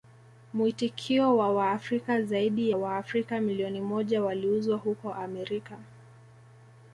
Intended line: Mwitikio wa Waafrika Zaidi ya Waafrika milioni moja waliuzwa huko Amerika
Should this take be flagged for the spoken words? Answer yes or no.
yes